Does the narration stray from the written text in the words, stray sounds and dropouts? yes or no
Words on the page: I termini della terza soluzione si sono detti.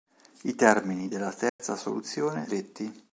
yes